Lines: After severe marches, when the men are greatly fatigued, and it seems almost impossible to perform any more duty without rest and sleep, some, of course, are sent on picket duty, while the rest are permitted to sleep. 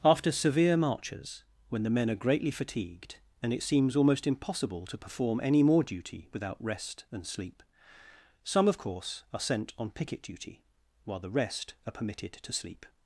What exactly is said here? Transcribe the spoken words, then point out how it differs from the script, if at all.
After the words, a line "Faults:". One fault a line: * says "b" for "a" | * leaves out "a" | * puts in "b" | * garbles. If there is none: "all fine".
After severe marches, when the men are greatly fatigued, and it seems almost impossible to perform any more duty without rest and sleep, some, of course, are sent on picket duty, while the rest are permitted to sleep.
Faults:
all fine